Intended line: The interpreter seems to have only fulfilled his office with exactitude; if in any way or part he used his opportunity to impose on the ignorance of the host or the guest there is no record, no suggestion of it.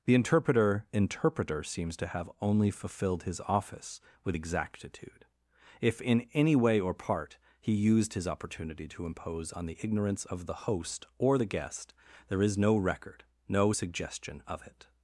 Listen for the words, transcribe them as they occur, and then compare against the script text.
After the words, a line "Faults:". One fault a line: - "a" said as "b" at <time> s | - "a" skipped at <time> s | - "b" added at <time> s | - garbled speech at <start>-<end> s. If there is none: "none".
The interpreter interpreter seems to have only fulfilled his office with exactitude; if in any way or part he used his opportunity to impose on the ignorance of the host or the guest there is no record, no suggestion of it.
Faults:
- "interpreter" added at 0.9 s